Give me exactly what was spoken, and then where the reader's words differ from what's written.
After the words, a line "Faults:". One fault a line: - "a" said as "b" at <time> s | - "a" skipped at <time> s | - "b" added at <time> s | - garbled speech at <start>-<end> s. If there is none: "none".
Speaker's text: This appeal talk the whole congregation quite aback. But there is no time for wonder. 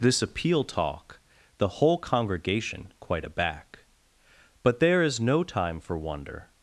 This appeal talk the whole congregation quite aback. But there is no time for wonder.
Faults:
none